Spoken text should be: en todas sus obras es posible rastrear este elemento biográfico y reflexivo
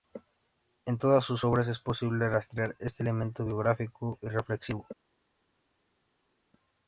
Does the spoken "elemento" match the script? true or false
true